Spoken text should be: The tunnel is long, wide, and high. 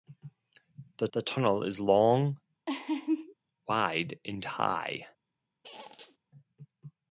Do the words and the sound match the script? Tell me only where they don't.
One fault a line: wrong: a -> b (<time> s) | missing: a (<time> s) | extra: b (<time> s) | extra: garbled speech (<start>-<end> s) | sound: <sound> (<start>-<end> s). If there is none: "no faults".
extra: the (1.1 s)
sound: laugh (2.7-3.3 s)
sound: squeak (5.6-6.2 s)